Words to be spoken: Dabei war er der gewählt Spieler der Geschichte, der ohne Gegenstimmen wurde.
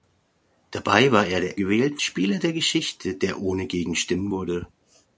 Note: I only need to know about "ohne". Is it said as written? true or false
true